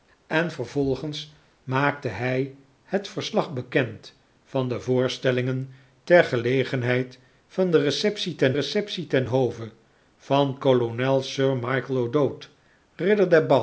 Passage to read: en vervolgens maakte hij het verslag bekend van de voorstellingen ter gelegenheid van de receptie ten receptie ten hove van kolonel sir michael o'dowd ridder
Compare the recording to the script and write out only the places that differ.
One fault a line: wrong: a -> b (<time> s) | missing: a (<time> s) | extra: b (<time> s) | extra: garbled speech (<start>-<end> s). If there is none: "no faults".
no faults